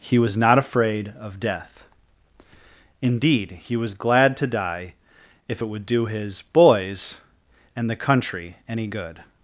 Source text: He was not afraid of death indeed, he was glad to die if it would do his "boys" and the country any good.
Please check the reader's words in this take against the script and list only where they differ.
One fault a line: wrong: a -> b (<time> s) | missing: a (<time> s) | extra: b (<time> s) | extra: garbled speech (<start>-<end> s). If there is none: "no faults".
no faults